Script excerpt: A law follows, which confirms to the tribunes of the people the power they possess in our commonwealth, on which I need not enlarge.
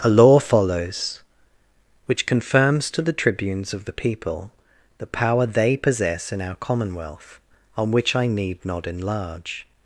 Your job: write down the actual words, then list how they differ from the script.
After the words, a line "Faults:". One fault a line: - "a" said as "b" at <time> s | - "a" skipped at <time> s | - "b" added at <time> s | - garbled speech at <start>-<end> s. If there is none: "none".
A law follows, which confirms to the tribunes of the people the power they possess in our commonwealth, on which I need not enlarge.
Faults:
none